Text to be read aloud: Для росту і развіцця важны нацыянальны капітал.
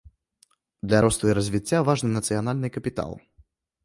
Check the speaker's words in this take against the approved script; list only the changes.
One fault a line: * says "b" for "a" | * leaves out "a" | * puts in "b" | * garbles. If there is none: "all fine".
all fine